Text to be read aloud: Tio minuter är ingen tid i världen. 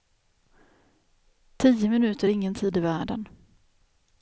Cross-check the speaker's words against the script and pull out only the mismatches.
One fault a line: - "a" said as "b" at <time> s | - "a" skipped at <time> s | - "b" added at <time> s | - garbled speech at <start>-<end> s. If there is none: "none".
none